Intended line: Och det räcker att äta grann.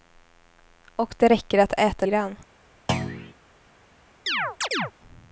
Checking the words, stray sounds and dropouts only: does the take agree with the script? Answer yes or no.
no